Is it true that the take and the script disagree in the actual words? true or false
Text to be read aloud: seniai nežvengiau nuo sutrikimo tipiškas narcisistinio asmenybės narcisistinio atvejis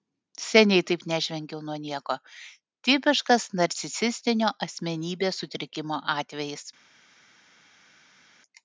true